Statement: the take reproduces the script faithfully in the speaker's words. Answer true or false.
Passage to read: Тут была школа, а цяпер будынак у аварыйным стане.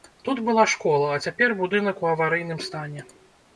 true